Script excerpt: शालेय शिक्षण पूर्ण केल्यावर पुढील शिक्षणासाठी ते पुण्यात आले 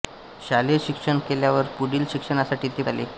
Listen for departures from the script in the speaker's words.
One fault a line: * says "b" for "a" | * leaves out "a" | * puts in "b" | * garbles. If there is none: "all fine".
* leaves out "पूर्ण"
* leaves out "पुण्यात"